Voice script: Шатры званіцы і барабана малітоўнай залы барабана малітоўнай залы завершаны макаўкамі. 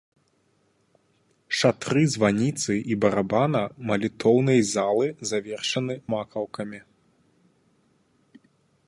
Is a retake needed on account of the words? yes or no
yes